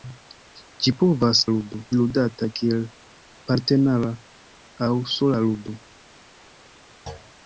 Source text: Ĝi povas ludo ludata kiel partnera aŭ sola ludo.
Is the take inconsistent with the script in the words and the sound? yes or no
yes